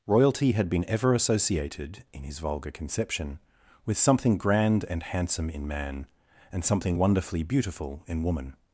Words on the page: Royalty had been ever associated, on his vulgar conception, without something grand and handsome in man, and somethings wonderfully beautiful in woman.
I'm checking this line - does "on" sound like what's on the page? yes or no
no